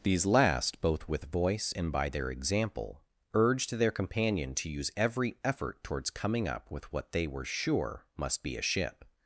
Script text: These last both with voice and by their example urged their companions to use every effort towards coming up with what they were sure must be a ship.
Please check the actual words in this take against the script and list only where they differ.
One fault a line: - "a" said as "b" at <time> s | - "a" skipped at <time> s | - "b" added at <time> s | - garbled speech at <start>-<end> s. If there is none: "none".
- "companions" said as "companion" at 3.9 s